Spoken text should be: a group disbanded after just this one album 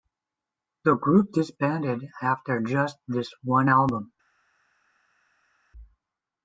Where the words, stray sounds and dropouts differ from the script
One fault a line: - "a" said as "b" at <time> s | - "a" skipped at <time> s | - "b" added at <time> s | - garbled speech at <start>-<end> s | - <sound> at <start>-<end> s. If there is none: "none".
- "a" said as "the" at 0.8 s